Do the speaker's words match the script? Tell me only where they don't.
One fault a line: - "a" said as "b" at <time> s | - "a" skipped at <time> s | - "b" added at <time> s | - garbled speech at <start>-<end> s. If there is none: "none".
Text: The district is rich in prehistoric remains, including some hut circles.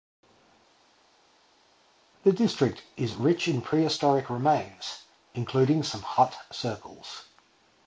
none